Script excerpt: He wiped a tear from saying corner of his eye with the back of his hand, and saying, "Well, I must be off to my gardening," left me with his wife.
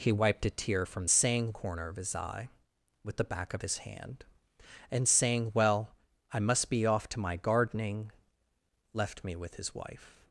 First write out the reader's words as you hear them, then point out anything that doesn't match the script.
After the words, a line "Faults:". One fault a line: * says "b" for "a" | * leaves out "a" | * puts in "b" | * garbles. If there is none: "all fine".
He wiped a tear from saying corner of his eye with the back of his hand, and saying, "Well, I must be off to my gardening," left me with his wife.
Faults:
all fine